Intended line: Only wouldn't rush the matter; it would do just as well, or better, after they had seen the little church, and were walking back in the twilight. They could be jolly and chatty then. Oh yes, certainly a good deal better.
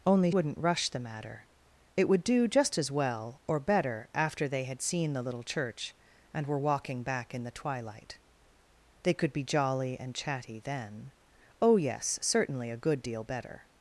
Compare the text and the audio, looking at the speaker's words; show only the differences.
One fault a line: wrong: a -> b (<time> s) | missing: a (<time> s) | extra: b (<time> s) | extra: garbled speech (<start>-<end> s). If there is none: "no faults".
no faults